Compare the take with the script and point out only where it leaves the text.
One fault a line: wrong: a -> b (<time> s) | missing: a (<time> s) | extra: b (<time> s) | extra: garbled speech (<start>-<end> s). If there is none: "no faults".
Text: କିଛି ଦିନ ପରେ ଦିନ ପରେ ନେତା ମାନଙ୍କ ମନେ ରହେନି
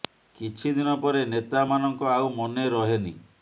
missing: ଦିନ ପରେ (1.2 s)
extra: ଆଉ (2.2 s)